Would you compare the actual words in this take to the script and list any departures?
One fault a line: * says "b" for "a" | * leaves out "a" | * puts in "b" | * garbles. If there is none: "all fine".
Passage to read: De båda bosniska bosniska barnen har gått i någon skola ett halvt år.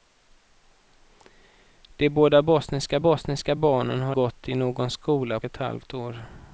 all fine